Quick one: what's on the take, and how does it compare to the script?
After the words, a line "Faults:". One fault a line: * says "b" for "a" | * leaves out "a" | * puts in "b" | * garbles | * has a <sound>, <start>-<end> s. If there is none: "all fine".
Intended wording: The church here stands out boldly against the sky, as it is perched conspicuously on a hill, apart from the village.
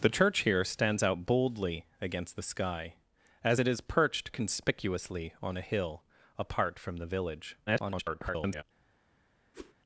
The church here stands out boldly against the sky, as it is perched conspicuously on a hill, apart from the village. [garbled]
Faults:
* garbles
* has a whoosh, 9.5-9.7 s